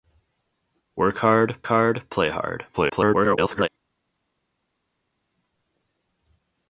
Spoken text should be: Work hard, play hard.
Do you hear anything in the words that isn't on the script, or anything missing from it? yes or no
yes